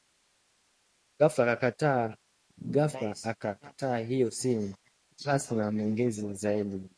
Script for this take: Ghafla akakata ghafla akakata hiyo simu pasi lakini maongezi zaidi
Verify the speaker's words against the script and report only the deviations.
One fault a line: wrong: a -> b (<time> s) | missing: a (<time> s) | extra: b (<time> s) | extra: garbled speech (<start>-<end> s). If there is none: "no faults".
missing: ghafla akakata (4.0 s)
wrong: lakini -> na (5.5 s)